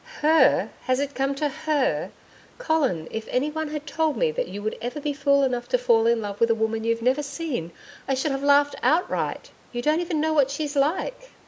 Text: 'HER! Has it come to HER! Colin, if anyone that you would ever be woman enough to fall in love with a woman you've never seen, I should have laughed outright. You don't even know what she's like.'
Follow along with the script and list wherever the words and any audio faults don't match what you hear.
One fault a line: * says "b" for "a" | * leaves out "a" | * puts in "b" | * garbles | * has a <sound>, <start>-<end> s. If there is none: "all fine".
* puts in "had told me"
* says "fool" for "woman"